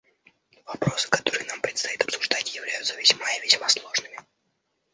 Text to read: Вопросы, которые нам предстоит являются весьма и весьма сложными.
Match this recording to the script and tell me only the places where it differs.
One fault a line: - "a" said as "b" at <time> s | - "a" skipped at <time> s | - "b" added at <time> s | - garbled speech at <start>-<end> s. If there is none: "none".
- "обсуждать" added at 2.0 s